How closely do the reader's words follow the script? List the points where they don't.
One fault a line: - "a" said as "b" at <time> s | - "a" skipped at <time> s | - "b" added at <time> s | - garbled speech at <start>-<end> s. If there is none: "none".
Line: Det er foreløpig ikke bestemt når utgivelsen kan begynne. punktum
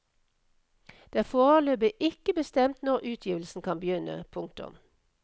none